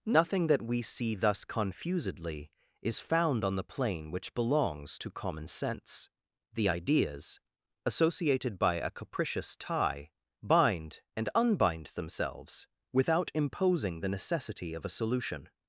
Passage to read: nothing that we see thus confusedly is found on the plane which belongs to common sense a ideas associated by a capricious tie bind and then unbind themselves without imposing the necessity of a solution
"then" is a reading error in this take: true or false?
true